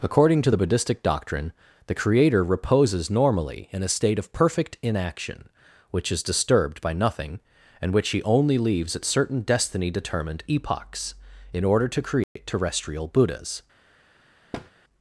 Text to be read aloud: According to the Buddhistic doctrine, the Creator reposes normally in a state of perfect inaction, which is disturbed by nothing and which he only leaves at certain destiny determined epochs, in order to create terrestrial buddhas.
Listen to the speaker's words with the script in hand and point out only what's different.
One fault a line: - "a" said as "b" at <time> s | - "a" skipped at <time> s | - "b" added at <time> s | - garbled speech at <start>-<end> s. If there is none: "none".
none